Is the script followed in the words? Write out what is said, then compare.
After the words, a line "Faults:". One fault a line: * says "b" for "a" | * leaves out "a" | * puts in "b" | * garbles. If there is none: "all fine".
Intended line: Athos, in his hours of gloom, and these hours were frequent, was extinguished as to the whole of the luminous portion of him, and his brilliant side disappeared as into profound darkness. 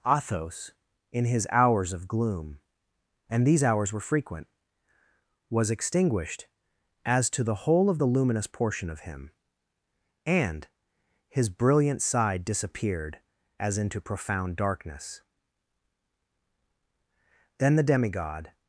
Athos, in his hours of gloom, and these hours were frequent, was extinguished as to the whole of the luminous portion of him, and his brilliant side disappeared as into profound darkness. Then the demigod
Faults:
* puts in "Then the demigod"